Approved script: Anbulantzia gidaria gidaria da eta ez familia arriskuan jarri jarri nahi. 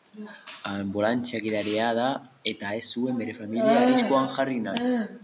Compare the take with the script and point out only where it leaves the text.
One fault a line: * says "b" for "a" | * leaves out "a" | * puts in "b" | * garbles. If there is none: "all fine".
* leaves out "gidaria"
* puts in "zuen bere"
* leaves out "jarri"